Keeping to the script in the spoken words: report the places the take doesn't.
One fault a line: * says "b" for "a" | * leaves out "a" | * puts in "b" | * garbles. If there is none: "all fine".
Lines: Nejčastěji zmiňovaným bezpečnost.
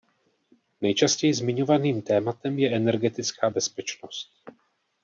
* puts in "tématem je energetická"